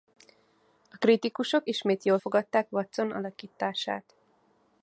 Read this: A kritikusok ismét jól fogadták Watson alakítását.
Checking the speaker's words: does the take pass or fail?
pass